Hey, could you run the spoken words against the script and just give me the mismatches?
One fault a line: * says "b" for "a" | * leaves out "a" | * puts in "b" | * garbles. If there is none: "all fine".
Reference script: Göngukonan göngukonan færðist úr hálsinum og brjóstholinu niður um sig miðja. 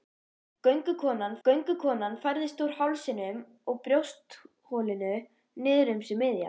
all fine